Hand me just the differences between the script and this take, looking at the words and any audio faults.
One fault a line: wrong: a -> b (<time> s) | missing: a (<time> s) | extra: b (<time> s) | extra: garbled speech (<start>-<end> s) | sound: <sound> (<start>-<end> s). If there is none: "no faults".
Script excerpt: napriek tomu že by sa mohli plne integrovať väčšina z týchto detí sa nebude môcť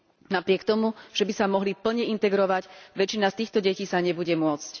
no faults